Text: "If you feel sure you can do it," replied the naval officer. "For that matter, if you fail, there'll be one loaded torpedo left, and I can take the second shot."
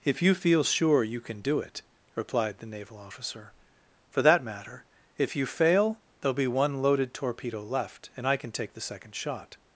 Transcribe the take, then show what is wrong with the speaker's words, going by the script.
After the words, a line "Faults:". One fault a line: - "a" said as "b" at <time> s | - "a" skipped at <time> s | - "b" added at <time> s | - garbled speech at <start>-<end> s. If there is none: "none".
"If you feel sure you can do it," replied the naval officer. "For that matter, if you fail, there'll be one loaded torpedo left, and I can take the second shot."
Faults:
none